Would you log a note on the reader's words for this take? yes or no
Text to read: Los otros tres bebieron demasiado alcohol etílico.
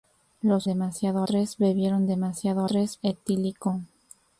yes